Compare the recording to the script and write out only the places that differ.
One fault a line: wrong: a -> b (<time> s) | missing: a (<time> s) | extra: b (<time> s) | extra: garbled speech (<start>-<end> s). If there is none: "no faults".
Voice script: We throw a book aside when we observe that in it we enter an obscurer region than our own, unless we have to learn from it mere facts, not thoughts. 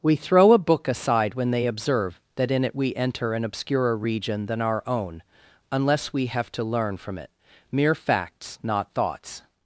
wrong: we -> they (1.5 s)